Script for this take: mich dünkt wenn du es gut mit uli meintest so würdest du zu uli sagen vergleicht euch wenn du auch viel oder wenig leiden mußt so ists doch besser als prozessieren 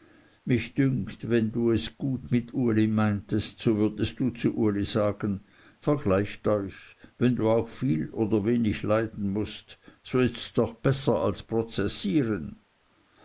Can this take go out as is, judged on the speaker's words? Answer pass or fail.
pass